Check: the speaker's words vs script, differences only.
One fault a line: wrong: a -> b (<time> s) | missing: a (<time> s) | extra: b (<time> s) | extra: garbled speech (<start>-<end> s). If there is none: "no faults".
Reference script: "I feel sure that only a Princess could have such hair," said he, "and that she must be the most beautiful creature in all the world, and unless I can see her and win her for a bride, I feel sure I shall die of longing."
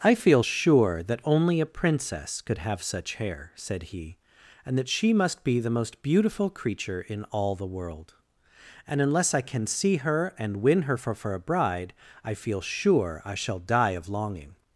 extra: for (11.1 s)